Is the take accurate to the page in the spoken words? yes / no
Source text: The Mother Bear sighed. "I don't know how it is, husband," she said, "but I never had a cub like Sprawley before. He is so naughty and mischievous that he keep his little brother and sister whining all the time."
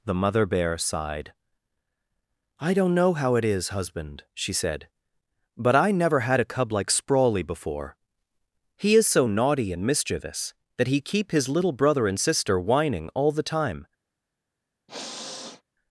yes